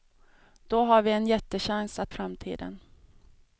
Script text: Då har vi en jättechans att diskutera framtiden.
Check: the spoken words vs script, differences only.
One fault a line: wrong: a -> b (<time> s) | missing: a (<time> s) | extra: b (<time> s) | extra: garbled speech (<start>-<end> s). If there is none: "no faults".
missing: diskutera (2.1 s)